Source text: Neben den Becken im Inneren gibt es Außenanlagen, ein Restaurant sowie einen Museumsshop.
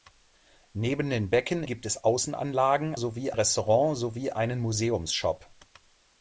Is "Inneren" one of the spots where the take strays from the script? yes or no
yes